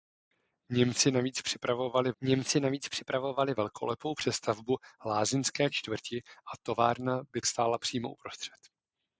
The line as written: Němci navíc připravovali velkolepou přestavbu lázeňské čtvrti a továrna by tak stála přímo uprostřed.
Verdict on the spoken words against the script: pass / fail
fail